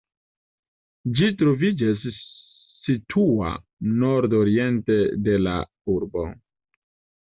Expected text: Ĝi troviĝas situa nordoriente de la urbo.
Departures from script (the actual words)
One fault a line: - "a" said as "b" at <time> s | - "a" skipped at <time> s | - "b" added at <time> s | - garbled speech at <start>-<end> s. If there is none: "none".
none